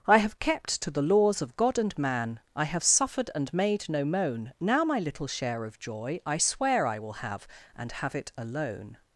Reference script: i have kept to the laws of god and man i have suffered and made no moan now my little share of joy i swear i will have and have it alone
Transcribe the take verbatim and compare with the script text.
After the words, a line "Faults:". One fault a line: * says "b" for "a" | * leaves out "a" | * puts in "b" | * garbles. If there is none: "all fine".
i have kept to the laws of god and man i have suffered and made no moan now my little share of joy i swear i will have and have it alone
Faults:
all fine